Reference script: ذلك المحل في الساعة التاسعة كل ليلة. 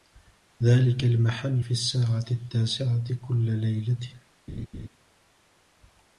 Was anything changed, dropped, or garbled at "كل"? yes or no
no